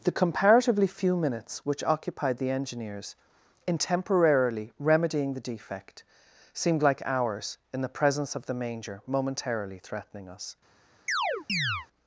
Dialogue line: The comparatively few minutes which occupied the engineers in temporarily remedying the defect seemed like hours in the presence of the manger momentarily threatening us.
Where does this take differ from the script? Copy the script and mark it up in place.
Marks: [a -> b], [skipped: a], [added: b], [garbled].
The comparatively few minutes which occupied the engineers in temporarily remedying the defect seemed like hours in the presence of the manger momentarily threatening us.